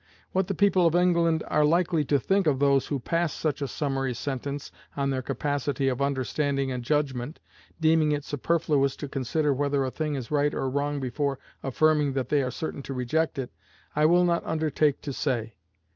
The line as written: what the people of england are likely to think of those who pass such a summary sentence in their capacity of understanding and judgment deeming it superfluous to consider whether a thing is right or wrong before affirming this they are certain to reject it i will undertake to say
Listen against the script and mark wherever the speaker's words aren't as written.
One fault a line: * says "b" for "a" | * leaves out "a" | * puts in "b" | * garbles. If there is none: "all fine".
* says "on" for "in"
* says "that" for "this"
* puts in "not"